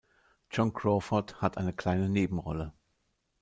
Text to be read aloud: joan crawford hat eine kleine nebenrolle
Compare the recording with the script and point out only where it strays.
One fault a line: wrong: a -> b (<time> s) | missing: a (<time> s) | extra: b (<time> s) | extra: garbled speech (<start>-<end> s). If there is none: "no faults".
no faults